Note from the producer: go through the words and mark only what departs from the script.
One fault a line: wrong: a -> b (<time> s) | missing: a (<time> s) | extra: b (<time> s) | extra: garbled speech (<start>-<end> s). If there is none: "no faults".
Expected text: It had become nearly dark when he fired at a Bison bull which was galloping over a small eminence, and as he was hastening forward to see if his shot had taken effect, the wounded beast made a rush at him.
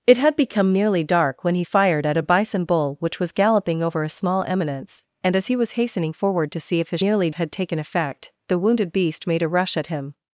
wrong: shot -> nearly (7.0 s)